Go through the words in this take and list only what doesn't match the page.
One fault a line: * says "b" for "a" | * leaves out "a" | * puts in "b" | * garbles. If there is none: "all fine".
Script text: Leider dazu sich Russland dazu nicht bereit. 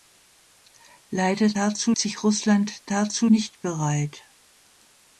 all fine